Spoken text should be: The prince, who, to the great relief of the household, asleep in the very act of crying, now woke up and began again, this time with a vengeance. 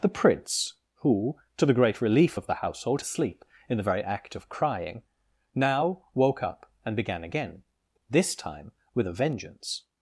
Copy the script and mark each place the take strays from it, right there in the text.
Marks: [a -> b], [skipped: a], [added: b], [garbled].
The prince, who, to the great relief of the household, asleep in the very act of crying, now woke up and began again, this time with a vengeance.